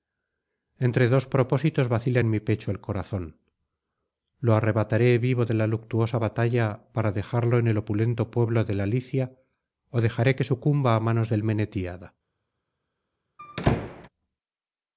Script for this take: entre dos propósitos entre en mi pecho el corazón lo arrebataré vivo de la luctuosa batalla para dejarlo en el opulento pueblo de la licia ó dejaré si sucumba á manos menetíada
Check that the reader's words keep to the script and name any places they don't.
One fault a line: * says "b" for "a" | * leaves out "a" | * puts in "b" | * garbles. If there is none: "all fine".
* says "vacila" for "entre"
* says "que" for "si"
* puts in "del"